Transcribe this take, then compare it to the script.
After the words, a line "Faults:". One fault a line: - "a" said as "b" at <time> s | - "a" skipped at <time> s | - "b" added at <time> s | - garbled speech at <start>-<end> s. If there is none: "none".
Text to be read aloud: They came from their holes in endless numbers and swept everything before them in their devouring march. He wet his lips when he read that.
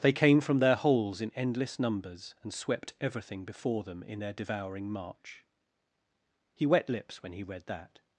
They came from their holes in endless numbers and swept everything before them in their devouring march. He wet lips when he read that.
Faults:
- "his" skipped at 6.9 s